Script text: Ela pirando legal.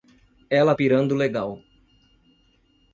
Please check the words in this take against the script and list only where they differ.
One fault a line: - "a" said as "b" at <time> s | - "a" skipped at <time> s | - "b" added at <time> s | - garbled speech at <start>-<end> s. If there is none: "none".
none